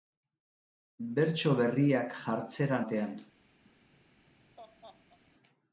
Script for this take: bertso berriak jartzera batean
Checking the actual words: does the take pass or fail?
pass